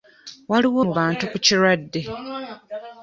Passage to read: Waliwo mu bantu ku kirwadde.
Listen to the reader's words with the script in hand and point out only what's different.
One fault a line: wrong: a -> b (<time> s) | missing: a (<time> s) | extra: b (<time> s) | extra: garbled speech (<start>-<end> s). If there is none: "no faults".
no faults